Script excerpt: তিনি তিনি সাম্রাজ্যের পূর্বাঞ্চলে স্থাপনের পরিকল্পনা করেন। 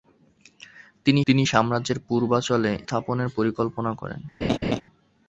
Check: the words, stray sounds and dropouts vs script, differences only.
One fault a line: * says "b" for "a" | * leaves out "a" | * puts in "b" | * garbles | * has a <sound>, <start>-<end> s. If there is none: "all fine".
* has a laugh, 4.4-4.8 s